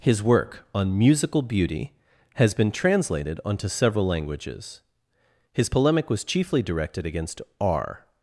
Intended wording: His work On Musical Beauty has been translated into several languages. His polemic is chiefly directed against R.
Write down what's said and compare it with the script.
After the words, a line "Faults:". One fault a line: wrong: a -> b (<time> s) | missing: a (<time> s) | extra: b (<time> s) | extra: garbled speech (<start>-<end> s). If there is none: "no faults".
His work On Musical Beauty has been translated onto several languages. His polemic was chiefly directed against R.
Faults:
wrong: into -> onto (3.5 s)
wrong: is -> was (6.1 s)